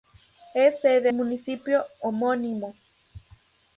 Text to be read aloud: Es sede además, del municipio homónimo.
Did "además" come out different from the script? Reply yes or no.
yes